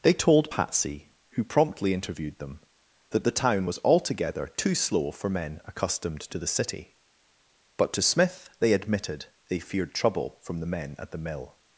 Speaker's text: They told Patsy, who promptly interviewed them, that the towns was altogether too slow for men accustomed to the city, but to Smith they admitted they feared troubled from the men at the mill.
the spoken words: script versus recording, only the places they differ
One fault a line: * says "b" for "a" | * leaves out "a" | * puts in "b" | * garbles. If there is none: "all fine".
* says "town" for "towns"
* says "trouble" for "troubled"